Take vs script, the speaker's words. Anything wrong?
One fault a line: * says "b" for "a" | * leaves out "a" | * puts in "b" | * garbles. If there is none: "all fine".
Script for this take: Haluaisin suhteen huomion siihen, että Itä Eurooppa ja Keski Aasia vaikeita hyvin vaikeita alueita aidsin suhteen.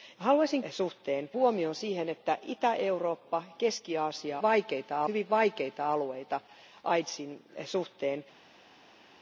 all fine